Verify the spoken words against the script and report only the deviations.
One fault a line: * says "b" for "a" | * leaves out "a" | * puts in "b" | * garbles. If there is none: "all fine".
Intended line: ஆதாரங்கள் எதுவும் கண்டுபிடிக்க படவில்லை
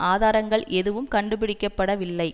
all fine